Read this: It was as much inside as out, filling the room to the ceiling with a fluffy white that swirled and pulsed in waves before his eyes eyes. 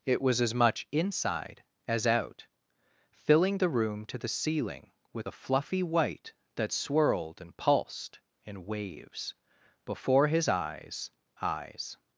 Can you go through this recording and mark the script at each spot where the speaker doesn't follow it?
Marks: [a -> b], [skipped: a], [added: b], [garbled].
It was as much inside as out, filling the room to the ceiling with a fluffy white that swirled and pulsed in waves before his eyes eyes.